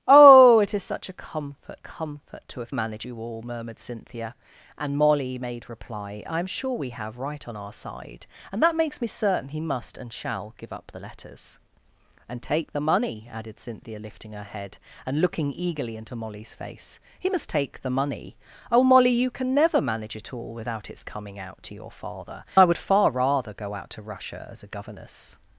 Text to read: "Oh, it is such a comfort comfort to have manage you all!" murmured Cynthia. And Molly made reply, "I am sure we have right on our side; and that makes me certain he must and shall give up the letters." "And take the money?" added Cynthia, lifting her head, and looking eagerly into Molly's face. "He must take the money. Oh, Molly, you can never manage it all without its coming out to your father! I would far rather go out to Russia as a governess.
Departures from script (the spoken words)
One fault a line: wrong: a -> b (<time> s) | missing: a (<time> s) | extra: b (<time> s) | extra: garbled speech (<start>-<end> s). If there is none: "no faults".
no faults